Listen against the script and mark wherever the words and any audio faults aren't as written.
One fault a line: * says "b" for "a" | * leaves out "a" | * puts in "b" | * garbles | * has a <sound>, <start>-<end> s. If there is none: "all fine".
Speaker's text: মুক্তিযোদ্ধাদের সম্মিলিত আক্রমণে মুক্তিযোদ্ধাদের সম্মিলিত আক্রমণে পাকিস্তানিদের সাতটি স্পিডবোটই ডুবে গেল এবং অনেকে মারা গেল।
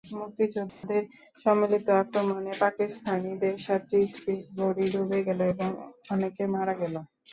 * has a dropout, 0.7-0.8 s
* leaves out "মুক্তিযোদ্ধাদের সম্মিলিত আক্রমণে"